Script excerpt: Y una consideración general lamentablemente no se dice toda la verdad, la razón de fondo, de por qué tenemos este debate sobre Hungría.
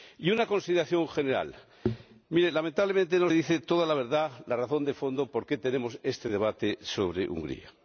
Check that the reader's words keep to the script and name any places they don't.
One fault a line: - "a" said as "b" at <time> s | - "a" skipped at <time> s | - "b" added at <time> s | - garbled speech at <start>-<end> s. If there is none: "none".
- "se" skipped at 3.3 s